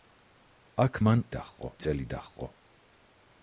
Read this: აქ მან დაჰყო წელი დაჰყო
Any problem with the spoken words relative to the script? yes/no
no